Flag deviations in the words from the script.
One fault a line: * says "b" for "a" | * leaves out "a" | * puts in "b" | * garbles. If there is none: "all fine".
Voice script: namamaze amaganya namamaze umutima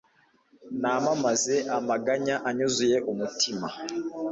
* says "anyuzuye" for "namamaze"